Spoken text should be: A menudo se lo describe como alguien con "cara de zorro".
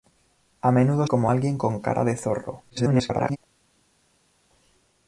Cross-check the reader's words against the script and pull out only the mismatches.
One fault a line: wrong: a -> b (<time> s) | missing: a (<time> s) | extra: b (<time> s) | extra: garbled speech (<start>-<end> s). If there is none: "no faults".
missing: se lo describe (1.1 s)
extra: garbled speech (2.7-3.4 s)